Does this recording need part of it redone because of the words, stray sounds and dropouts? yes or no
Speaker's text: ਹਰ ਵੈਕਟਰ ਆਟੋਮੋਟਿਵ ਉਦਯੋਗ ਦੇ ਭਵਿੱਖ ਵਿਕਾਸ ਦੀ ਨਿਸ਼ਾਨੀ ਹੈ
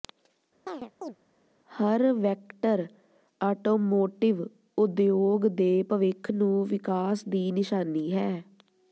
yes